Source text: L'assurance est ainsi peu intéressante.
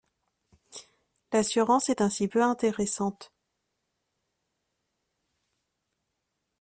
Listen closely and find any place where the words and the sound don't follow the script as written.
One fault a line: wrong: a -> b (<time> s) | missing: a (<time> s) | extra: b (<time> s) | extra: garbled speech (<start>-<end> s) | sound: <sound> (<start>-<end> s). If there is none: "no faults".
no faults